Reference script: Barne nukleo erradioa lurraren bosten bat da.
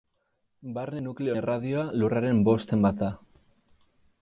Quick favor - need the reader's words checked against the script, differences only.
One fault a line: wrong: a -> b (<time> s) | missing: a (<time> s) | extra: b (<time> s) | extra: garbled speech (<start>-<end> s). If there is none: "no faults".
no faults